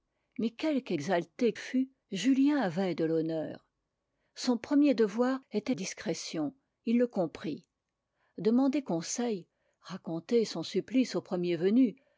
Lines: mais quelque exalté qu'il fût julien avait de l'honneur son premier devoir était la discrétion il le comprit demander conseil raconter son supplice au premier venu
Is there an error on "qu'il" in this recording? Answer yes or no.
yes